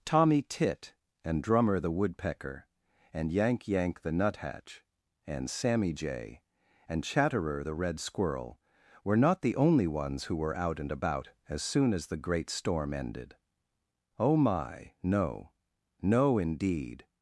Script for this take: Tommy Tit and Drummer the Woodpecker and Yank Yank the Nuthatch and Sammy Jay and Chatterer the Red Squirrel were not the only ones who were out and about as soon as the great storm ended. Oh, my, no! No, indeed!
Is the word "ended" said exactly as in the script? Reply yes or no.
yes